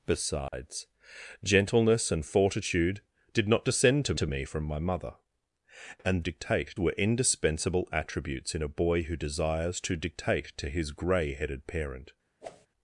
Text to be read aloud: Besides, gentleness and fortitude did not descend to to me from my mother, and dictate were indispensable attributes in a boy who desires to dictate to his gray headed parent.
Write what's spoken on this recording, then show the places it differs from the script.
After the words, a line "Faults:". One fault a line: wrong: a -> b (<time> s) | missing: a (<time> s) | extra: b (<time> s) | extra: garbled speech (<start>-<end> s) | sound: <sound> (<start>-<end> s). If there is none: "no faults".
Besides, gentleness and fortitude did not descend to to me from my mother, and dictate were indispensable attributes in a boy who desires to dictate to his gray headed parent.
Faults:
sound: dropout (0.5-0.5 s)
sound: whoosh (12.4-12.7 s)